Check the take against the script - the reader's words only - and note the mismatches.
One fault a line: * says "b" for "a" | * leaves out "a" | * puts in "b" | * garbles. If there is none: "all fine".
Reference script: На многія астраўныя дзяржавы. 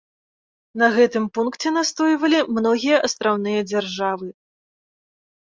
* puts in "гэтым пункце настойвалі"